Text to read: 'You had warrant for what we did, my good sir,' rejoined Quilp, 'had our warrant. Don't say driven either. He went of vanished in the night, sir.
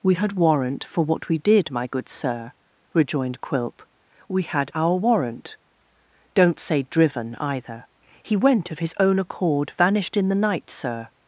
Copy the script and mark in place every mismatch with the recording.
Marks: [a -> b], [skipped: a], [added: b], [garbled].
['You -> We] had warrant for what we did, my good sir,' rejoined Quilp, [added: we] 'had our warrant. Don't say driven either. He went of [added: his own accord] vanished in the night, sir.